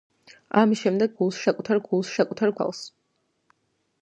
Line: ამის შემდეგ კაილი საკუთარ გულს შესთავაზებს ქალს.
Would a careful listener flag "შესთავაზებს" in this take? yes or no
yes